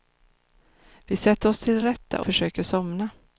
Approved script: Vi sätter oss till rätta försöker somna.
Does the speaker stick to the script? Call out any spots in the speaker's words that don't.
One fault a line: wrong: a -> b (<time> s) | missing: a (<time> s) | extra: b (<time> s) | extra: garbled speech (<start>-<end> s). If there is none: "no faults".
no faults